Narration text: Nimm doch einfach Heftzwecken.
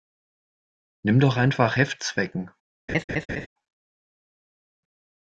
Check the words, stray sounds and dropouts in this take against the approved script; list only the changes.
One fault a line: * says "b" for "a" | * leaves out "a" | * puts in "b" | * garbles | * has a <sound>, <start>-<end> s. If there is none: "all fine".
* has a laugh, 2.9-3.5 s